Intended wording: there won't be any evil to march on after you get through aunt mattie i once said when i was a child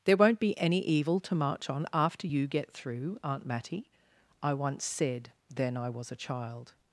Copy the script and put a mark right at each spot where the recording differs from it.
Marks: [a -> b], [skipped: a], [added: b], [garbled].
there won't be any evil to march on after you get through aunt mattie i once said [when -> then] i was a child